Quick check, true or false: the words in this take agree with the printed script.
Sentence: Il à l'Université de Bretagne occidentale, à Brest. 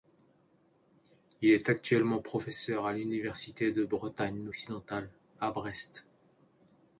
false